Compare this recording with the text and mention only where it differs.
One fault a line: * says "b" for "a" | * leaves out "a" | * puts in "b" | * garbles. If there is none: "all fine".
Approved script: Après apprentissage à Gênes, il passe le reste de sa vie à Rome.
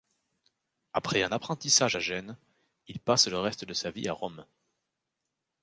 * puts in "un"